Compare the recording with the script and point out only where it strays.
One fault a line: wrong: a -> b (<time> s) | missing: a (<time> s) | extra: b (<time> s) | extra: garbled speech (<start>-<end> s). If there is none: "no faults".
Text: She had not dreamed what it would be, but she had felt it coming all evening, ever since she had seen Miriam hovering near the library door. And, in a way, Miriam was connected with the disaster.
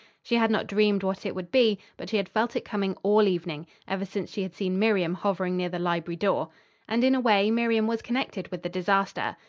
no faults